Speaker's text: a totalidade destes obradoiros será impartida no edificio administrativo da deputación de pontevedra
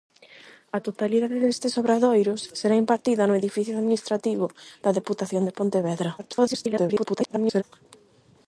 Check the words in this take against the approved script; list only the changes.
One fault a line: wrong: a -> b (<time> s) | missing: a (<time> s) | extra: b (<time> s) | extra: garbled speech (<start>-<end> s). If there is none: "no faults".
extra: garbled speech (6.2-7.6 s)